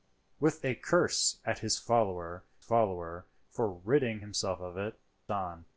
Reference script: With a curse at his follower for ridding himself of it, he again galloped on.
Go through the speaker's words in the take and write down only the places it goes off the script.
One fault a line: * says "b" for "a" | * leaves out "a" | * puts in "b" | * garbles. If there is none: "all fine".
* puts in "follower"
* leaves out "he again galloped"